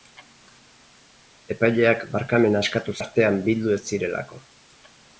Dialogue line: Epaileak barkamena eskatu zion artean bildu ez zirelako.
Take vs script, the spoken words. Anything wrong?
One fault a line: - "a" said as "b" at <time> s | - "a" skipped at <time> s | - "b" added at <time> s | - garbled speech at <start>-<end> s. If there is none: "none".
- "zion" skipped at 3.0 s